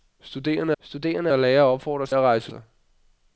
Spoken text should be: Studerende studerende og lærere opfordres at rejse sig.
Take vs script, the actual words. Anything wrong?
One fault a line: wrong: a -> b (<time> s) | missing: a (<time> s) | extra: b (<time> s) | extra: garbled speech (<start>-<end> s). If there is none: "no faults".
no faults